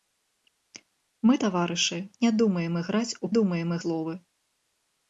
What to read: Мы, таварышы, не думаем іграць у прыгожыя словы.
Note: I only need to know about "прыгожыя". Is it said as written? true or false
false